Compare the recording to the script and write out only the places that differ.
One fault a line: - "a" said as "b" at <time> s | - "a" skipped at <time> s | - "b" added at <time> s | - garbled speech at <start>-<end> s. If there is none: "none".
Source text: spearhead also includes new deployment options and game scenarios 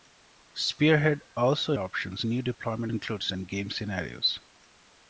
- "includes" said as "options" at 1.8 s
- "options" said as "includes" at 2.9 s